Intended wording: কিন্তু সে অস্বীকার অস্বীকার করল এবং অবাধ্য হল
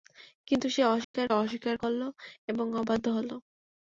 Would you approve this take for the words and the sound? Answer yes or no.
no